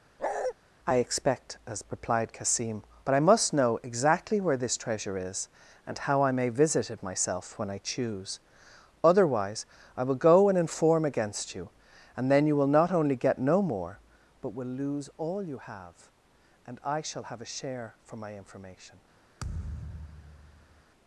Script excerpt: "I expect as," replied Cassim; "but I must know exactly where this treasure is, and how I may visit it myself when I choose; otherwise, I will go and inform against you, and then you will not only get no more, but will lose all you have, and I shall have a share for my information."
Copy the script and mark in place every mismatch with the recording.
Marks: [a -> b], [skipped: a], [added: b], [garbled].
"I expect as," replied Cassim; "but I must know exactly where this treasure is, and how I may visit it myself when I choose; otherwise, I will go and inform against you, and then you will not only get no more, but will lose all you have, and I shall have a share for my information."